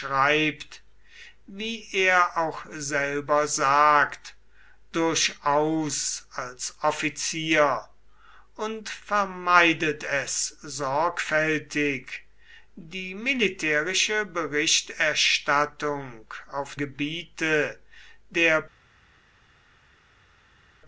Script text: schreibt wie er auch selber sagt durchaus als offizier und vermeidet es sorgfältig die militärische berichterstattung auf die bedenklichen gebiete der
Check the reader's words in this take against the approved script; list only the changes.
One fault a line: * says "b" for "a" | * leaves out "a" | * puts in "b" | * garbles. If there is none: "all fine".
* leaves out "die bedenklichen"